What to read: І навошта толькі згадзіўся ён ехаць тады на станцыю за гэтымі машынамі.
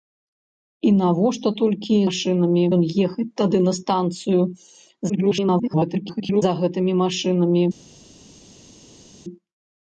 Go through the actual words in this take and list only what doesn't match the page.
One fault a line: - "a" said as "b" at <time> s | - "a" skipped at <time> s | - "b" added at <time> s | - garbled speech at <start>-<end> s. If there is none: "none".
- "згадзіўся" said as "машынамі" at 2.0 s
- garbled speech at 5.1-6.4 s